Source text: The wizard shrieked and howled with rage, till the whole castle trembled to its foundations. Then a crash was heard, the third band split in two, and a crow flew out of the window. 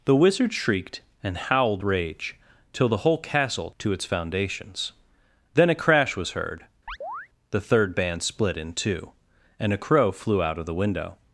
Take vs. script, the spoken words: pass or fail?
fail